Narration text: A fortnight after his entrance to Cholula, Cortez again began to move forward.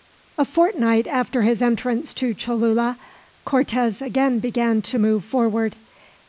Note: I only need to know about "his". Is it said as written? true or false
true